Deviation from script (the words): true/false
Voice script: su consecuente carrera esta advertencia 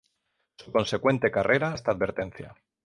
false